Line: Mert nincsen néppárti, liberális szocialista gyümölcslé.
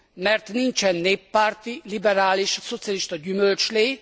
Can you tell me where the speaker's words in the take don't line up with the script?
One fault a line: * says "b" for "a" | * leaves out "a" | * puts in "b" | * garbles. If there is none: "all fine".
all fine